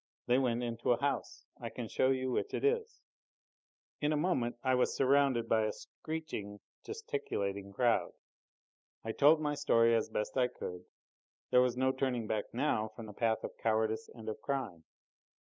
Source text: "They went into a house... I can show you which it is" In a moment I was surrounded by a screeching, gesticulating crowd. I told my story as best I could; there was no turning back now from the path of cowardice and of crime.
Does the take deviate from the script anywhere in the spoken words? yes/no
no